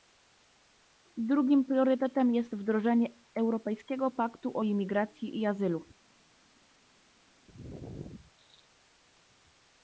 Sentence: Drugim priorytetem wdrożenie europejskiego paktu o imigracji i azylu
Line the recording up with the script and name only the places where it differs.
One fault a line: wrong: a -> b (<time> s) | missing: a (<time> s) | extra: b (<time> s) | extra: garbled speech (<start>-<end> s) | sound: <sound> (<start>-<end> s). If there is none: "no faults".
extra: jest (2.4 s)